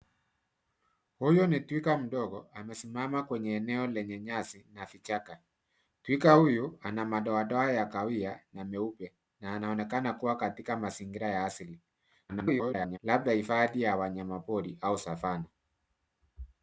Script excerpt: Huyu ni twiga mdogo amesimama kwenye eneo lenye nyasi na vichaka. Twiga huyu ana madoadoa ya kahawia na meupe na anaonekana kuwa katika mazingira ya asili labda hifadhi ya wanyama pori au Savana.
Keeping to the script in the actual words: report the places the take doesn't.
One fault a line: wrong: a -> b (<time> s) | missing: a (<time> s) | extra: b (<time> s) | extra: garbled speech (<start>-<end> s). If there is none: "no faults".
extra: garbled speech (12.3-13.0 s)